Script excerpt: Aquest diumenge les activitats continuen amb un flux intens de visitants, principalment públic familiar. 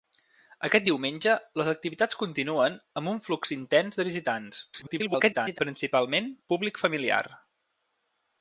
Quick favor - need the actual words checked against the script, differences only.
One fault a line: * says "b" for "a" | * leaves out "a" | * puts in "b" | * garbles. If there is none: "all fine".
* garbles